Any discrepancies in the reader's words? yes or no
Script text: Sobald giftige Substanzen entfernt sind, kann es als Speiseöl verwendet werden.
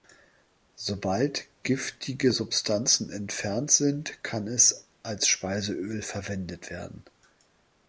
no